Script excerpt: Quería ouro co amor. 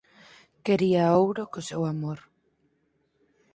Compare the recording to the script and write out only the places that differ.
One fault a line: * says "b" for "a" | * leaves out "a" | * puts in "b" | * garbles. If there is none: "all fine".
* puts in "seu"